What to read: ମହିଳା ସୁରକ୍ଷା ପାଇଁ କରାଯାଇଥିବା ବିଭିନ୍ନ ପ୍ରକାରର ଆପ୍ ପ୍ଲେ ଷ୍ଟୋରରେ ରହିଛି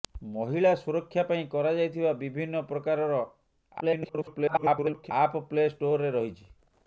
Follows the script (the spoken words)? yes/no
no